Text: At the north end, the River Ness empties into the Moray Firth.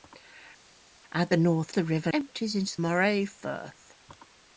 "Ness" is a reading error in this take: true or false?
true